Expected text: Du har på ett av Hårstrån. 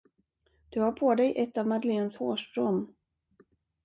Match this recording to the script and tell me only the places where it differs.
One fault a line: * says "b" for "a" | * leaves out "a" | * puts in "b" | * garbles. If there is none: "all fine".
* puts in "dig"
* puts in "Madeleines"